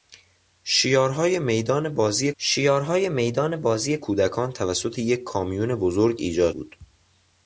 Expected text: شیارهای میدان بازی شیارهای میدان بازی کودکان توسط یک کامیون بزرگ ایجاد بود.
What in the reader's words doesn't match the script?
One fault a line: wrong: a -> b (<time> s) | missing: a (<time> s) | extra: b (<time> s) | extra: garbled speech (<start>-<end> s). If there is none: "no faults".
no faults